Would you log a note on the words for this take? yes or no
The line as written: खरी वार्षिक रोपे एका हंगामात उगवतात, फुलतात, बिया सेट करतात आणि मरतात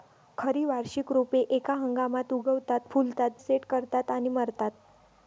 yes